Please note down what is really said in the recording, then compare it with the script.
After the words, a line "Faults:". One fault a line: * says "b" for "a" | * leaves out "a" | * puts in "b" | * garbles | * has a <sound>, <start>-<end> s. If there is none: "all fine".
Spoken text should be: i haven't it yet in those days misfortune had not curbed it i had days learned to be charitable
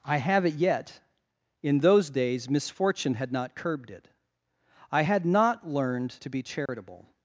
i have it yet in those days misfortune had not curbed it i had not learned to be charitable
Faults:
* says "have" for "haven't"
* says "not" for "days"
* has a dropout, 6.7-6.7 s